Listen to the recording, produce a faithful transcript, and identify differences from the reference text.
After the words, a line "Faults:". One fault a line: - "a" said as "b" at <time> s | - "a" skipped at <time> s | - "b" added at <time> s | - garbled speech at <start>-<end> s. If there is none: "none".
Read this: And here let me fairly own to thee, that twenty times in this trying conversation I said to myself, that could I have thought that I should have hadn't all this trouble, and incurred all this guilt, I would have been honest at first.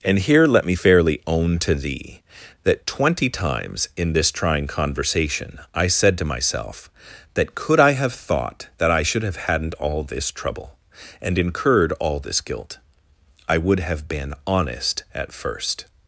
And here let me fairly own to thee, that twenty times in this trying conversation I said to myself, that could I have thought that I should have hadn't all this trouble, and incurred all this guilt, I would have been honest at first.
Faults:
none